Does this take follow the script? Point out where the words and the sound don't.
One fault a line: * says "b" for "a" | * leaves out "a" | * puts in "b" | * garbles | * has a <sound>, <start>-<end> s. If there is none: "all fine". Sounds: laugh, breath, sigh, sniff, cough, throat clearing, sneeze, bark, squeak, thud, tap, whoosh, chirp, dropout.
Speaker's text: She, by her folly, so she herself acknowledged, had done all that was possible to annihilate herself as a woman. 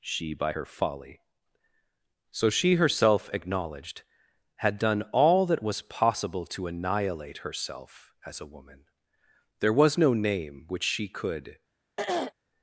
* puts in "There was no name which she could"
* has a throat clearing, 12.0-12.3 s